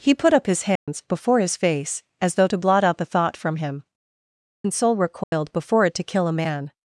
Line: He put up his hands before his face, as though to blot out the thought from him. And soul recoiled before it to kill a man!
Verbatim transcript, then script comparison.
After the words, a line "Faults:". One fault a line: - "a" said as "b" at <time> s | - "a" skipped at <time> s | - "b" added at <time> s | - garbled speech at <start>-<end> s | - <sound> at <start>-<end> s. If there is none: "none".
He put up his hands before his face, as though to blot out the thought from him. And soul recoiled before it to kill a man!
Faults:
- dropout at 0.8-0.9 s
- dropout at 5.2-5.3 s